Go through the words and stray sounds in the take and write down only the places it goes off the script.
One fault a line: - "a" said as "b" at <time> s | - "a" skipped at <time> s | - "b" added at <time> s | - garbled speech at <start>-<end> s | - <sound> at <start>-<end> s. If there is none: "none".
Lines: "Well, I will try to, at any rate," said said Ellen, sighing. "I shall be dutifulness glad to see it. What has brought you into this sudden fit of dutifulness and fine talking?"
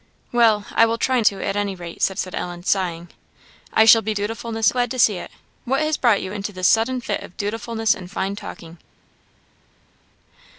none